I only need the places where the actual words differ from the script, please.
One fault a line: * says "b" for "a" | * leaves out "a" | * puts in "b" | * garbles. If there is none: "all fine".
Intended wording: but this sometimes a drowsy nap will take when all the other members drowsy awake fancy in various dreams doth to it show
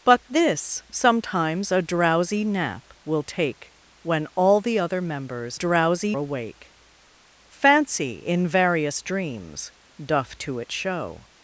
all fine